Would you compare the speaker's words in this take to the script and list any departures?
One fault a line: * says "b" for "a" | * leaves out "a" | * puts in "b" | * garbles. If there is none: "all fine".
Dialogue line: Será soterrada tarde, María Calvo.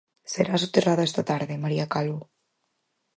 * puts in "esta"